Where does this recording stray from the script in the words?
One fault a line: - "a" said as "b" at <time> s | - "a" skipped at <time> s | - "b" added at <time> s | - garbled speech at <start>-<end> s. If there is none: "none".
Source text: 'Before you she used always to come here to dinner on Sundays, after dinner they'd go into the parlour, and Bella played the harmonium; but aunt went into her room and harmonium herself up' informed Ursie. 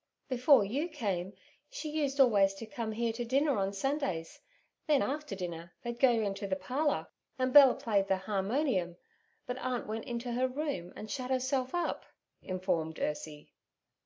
- "came" added at 0.9 s
- "then" added at 4.9 s
- "harmonium" said as "shut" at 11.1 s